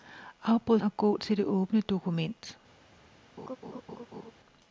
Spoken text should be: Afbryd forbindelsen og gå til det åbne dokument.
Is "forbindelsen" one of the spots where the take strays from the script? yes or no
yes